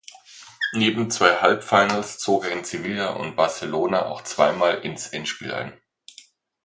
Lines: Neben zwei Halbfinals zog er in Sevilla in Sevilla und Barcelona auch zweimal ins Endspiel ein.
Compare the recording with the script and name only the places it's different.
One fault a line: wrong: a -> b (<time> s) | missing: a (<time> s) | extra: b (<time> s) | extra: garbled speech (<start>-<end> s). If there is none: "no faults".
missing: in Sevilla (3.1 s)